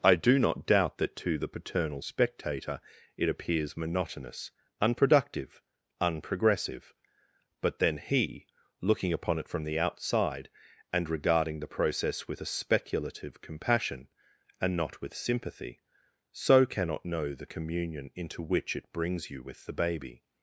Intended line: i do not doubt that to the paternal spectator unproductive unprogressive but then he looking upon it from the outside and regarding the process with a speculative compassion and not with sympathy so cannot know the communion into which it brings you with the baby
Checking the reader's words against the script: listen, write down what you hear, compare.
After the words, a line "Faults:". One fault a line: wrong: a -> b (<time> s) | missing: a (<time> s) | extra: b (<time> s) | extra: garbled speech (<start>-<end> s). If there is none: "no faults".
i do not doubt that to the paternal spectator it appears monotonous unproductive unprogressive but then he looking upon it from the outside and regarding the process with a speculative compassion and not with sympathy so cannot know the communion into which it brings you with the baby
Faults:
extra: it appears monotonous (3.2 s)